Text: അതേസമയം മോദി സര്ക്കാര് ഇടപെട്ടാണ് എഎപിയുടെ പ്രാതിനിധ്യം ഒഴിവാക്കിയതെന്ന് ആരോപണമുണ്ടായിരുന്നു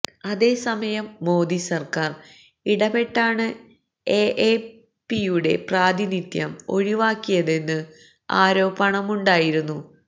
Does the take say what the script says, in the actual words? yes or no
yes